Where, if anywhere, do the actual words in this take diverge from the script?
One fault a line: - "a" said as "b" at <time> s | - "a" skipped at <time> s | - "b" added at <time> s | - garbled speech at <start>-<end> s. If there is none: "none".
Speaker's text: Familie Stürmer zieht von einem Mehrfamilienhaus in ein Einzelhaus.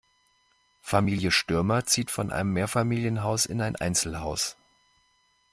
none